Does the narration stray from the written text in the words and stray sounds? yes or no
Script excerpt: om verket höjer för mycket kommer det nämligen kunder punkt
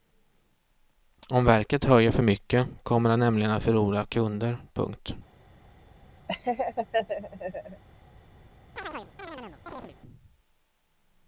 yes